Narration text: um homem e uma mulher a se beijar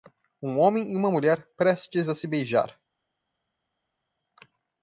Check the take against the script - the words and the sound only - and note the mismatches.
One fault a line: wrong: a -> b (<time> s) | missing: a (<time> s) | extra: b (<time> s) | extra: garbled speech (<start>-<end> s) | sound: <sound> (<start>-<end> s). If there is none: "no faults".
extra: prestes (1.6 s)